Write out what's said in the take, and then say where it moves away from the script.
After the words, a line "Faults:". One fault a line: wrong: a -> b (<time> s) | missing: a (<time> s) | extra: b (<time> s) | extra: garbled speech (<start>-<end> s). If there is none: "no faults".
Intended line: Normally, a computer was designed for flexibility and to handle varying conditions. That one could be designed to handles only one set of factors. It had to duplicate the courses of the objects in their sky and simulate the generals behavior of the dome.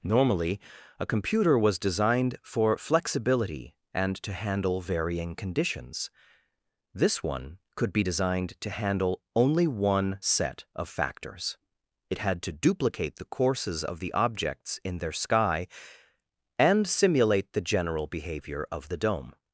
Normally, a computer was designed for flexibility and to handle varying conditions. This one could be designed to handle only one set of factors. It had to duplicate the courses of the objects in their sky and simulate the general behavior of the dome.
Faults:
wrong: That -> This (6.9 s)
wrong: handles -> handle (8.7 s)
wrong: generals -> general (17.6 s)